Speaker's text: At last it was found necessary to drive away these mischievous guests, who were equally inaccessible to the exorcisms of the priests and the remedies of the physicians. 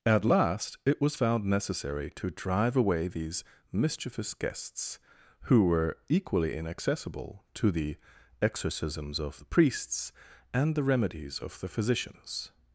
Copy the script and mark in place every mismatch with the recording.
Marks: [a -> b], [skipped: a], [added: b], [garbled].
At last it was found necessary to drive away these mischievous guests, who were equally inaccessible to the exorcisms of the priests and the remedies of the physicians.